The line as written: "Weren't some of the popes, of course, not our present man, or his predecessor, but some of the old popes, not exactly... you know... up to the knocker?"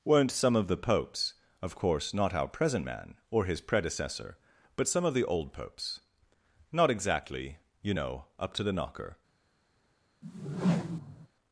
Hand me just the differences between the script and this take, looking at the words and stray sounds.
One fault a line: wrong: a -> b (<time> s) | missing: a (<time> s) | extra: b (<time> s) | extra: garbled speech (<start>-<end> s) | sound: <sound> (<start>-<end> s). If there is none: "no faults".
sound: whoosh (10.2-11.3 s)